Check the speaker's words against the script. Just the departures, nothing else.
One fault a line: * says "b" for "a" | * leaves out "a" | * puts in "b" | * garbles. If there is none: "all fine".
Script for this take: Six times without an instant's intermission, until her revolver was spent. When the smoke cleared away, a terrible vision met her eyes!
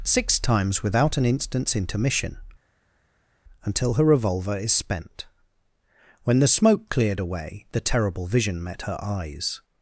* says "is" for "was"
* says "the" for "a"